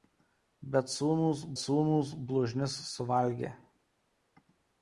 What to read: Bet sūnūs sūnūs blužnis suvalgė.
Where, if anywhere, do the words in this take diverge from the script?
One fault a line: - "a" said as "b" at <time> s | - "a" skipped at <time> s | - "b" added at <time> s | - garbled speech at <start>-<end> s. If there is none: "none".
none